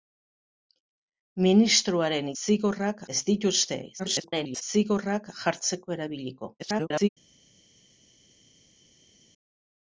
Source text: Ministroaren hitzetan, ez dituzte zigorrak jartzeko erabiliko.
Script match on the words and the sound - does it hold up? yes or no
no